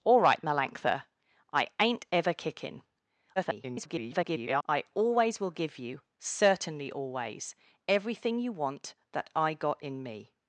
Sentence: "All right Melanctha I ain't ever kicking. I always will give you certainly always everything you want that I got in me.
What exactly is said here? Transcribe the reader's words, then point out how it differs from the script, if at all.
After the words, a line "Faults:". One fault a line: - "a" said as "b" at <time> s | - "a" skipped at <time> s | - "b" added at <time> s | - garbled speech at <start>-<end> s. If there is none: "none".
"All right Melanctha I ain't ever kicking. [garbled] I always will give you certainly always everything you want that I got in me.
Faults:
- garbled speech at 3.4-4.6 s